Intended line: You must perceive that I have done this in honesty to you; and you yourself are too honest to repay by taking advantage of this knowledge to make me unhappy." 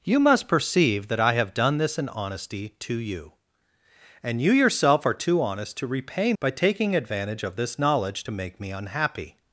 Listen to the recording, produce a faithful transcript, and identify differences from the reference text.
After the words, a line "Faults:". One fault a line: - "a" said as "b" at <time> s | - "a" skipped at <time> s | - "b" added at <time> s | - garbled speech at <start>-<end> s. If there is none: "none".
You must perceive that I have done this in honesty to you; and you yourself are too honest to repay by taking advantage of this knowledge to make me unhappy."
Faults:
none